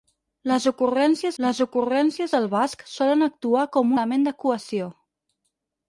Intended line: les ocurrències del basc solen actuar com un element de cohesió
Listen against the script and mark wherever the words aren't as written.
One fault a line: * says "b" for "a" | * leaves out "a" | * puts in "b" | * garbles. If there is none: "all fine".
* puts in "les ocurrències"
* leaves out "un"